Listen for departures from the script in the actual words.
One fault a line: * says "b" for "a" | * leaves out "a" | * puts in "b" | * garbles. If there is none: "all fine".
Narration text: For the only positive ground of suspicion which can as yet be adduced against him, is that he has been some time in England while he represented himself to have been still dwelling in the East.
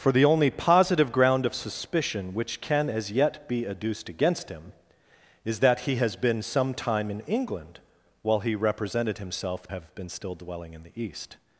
* leaves out "to"